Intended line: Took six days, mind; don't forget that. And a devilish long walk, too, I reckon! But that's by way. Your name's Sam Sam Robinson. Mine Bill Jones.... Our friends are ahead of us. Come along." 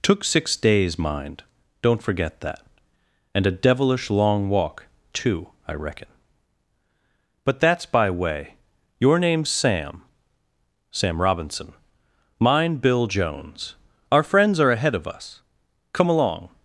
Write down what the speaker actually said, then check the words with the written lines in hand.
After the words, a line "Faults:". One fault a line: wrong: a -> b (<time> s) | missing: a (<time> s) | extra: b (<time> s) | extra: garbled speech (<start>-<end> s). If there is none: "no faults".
Took six days, mind; don't forget that. And a devilish long walk, too, I reckon! But that's by way. Your name's Sam Sam Robinson. Mine Bill Jones.... Our friends are ahead of us. Come along."
Faults:
no faults